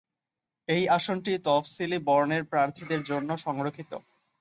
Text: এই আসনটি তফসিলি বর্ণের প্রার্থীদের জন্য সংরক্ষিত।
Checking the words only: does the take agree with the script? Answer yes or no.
yes